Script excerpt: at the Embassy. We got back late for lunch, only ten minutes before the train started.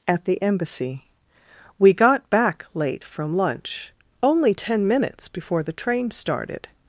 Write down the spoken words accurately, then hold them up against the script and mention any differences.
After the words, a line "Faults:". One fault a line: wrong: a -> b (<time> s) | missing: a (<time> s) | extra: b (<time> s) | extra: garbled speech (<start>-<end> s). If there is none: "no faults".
at the Embassy. We got back late from lunch, only ten minutes before the train started.
Faults:
wrong: for -> from (3.0 s)